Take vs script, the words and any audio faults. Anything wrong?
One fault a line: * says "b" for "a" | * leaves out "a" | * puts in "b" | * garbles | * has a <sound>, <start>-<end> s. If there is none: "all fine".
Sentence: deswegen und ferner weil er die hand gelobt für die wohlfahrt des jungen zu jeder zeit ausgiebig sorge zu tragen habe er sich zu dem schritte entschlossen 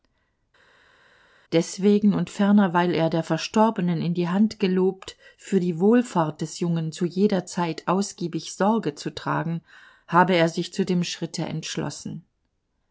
* puts in "der verstorbenen in"